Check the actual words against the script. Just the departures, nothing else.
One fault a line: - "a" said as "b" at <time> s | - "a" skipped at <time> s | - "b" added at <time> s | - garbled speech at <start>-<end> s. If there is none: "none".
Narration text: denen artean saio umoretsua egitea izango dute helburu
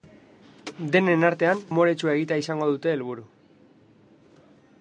- "saio" skipped at 1.6 s